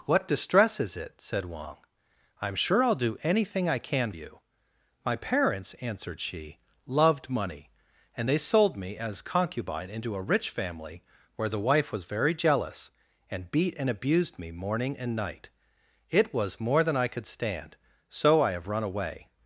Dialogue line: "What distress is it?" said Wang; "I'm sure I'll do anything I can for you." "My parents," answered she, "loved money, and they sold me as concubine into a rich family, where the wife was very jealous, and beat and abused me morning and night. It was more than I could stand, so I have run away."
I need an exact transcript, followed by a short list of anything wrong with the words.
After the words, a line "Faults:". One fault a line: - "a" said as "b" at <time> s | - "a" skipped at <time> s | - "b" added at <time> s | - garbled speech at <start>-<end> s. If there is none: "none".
"What distress is it?" said Wang; "I'm sure I'll do anything I can you." "My parents," answered she, "loved money, and they sold me as concubine into a rich family, where the wife was very jealous, and beat and abused me morning and night. It was more than I could stand, so I have run away."
Faults:
- "for" skipped at 4.1 s